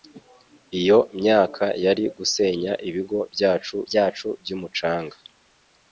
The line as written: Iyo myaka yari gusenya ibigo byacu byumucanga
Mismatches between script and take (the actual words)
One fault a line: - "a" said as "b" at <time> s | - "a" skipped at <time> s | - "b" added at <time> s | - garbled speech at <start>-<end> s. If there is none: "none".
- "byacu" added at 3.9 s